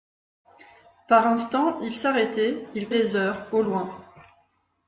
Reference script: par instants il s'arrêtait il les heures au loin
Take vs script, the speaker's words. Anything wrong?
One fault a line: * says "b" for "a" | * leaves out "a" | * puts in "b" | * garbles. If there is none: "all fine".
all fine